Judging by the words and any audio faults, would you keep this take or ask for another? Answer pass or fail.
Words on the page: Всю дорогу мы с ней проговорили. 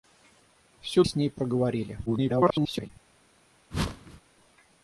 fail